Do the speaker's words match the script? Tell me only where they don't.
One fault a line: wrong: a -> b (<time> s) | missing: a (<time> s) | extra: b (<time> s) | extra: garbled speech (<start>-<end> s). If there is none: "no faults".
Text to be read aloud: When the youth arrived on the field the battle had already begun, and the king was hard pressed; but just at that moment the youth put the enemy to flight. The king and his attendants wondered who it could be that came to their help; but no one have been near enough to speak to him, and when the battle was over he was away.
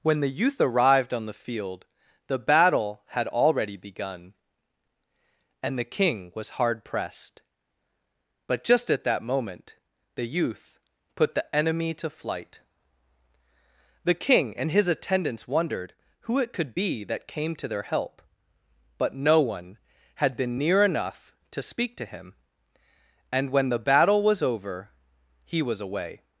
wrong: have -> had (20.1 s)